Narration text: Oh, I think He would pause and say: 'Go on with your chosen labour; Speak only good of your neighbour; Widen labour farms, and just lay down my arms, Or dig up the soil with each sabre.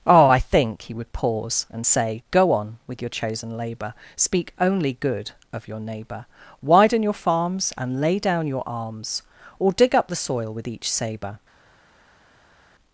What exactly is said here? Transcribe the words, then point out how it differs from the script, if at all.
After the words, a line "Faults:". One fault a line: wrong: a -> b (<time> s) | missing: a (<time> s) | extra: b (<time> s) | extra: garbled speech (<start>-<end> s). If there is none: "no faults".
Oh, I think He would pause and say: 'Go on with your chosen labour; Speak only good of your neighbour; Widen your farms, and lay down your arms, Or dig up the soil with each sabre.
Faults:
wrong: labour -> your (7.0 s)
missing: just (8.0 s)
wrong: my -> your (8.5 s)